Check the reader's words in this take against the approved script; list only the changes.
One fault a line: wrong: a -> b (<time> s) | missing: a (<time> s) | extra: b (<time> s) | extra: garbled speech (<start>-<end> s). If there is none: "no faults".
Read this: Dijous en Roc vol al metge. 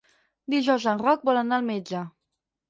extra: anar (1.4 s)